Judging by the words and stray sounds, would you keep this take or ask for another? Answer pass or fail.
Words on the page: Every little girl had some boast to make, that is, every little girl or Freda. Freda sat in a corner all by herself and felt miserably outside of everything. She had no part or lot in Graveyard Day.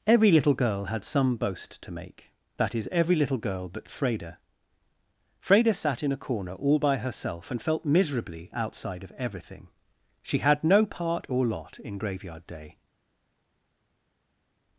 fail